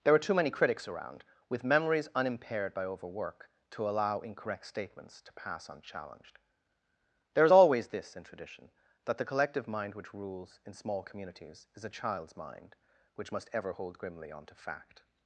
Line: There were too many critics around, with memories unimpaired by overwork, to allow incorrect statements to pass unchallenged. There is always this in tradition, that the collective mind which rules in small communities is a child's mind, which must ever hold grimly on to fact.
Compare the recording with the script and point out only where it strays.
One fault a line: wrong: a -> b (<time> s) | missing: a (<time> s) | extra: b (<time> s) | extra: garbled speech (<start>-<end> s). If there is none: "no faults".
wrong: were -> are (0.1 s)